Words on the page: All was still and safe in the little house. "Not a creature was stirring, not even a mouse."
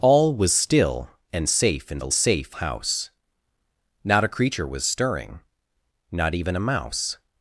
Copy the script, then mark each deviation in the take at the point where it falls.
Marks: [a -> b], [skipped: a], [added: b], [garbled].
All was still and safe in the [little -> safe] house. "Not a creature was stirring, not even a mouse."